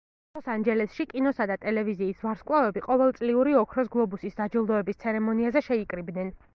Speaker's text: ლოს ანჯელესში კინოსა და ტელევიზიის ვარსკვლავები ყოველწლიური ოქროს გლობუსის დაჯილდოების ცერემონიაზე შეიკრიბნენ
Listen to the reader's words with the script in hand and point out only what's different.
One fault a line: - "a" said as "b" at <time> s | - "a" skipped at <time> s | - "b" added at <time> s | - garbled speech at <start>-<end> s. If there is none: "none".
none